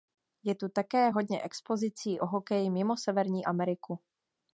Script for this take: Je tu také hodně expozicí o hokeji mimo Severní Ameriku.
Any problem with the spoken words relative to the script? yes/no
no